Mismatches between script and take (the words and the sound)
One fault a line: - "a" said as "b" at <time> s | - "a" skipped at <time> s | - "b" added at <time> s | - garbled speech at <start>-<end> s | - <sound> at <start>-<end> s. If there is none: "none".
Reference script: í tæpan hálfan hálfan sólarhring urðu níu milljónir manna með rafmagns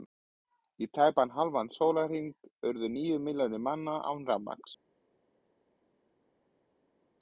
- "hálfan" skipped at 1.7 s
- "með" said as "án" at 4.1 s